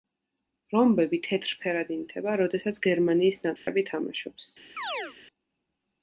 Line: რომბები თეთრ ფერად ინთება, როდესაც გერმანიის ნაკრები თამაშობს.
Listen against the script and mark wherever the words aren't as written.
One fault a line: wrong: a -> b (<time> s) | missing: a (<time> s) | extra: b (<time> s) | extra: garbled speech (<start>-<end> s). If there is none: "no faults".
no faults